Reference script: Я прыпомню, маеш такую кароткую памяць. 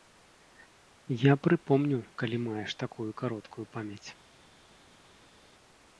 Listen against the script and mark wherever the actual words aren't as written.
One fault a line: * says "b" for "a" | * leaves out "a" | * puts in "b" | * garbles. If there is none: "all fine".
* puts in "калі"